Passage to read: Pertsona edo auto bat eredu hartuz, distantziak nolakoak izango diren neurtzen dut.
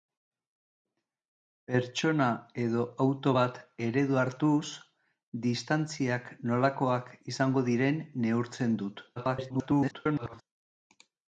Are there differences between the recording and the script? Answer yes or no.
yes